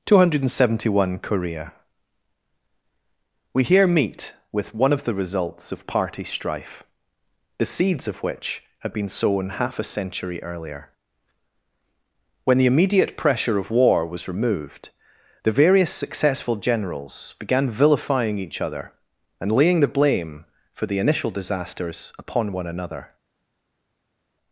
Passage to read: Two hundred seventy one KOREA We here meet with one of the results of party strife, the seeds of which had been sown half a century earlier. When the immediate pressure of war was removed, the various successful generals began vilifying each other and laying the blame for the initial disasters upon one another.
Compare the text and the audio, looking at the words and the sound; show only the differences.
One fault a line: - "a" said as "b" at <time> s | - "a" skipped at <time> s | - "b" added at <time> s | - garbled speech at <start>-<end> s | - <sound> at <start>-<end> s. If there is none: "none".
none